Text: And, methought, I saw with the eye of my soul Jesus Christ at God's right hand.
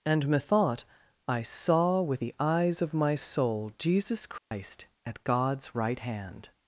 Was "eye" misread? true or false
true